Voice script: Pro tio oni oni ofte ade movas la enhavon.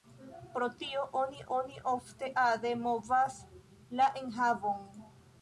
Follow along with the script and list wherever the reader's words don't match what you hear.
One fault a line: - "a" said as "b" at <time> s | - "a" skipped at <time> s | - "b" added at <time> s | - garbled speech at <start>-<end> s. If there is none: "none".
none